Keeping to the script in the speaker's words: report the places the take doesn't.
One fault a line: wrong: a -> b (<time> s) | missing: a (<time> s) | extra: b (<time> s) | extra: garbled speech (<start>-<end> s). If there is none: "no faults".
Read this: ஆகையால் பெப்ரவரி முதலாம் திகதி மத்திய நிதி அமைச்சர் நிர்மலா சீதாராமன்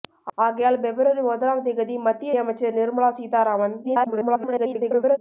missing: நிதி (2.3 s)
extra: garbled speech (3.8-5.2 s)